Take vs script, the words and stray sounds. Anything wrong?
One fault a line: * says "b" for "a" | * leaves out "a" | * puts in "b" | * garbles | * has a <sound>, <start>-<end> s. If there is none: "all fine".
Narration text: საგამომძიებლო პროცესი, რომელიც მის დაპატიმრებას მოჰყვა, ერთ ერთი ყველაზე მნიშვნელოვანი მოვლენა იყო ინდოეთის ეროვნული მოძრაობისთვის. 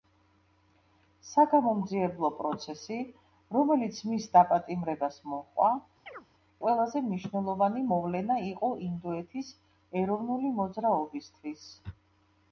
* leaves out "ერთ ერთი"
* has a chirp, 6.1-6.3 s